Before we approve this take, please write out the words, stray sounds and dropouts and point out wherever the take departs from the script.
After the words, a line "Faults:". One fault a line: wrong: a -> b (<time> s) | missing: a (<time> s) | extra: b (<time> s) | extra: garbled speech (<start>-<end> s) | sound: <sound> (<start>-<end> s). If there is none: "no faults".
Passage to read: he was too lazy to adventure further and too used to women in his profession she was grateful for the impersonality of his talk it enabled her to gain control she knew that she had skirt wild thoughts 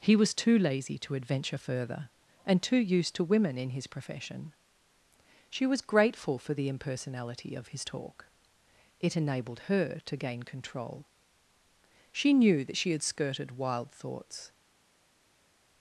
he was too lazy to adventure further and too used to women in his profession she was grateful for the impersonality of his talk it enabled her to gain control she knew that she had skirted wild thoughts
Faults:
wrong: skirt -> skirted (13.0 s)